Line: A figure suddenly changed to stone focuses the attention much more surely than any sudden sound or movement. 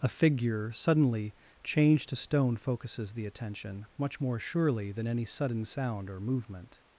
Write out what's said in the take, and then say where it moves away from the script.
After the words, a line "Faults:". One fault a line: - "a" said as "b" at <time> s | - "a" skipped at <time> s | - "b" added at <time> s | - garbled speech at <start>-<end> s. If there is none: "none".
A figure suddenly changed to stone focuses the attention much more surely than any sudden sound or movement.
Faults:
none